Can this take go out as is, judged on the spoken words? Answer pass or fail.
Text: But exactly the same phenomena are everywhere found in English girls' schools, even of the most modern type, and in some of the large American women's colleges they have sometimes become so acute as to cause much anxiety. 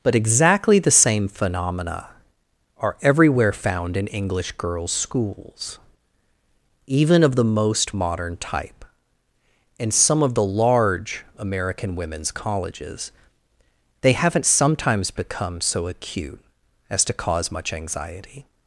fail